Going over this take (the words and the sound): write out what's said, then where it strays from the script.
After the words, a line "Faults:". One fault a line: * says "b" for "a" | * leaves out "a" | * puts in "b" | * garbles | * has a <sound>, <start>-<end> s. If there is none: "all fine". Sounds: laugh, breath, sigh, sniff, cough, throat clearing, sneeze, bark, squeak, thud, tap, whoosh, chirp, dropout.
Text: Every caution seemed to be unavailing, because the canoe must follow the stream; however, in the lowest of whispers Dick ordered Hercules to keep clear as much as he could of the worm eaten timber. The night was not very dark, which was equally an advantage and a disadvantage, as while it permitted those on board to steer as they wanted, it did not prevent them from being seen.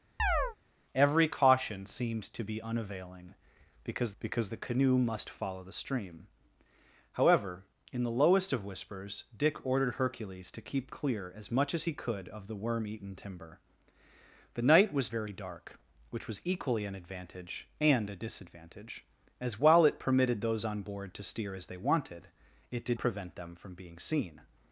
Every caution seemed to be unavailing, because because the canoe must follow the stream; however, in the lowest of whispers Dick ordered Hercules to keep clear as much as he could of the worm eaten timber. The night was very dark, which was equally an advantage and a disadvantage, as while it permitted those on board to steer as they wanted, it did prevent them from being seen.
Faults:
* has a chirp, 0.2-0.6 s
* puts in "because"
* leaves out "not"
* leaves out "not"